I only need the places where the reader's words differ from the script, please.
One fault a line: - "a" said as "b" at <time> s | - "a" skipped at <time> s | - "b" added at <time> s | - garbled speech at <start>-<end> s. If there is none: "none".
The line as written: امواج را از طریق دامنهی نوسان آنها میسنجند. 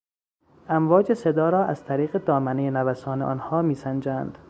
- "صدا" added at 1.1 s